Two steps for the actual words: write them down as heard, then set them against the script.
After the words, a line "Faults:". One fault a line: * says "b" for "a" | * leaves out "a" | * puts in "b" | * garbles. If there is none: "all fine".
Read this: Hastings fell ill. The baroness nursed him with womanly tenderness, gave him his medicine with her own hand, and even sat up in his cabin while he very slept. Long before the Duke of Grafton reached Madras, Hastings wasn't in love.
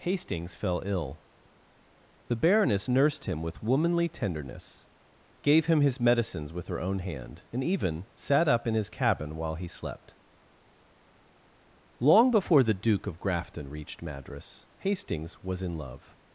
Hastings fell ill. The baroness nursed him with womanly tenderness, gave him his medicines with her own hand, and even sat up in his cabin while he slept. Long before the Duke of Grafton reached Madras, Hastings was in love.
Faults:
* says "medicines" for "medicine"
* leaves out "very"
* says "was" for "wasn't"